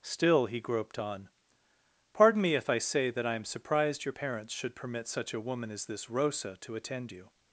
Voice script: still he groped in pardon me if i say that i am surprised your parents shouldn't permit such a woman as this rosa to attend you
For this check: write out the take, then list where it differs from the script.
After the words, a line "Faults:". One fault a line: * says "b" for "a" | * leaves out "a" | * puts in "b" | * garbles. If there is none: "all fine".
still he groped on pardon me if i say that i am surprised your parents should permit such a woman as this rosa to attend you
Faults:
* says "on" for "in"
* says "should" for "shouldn't"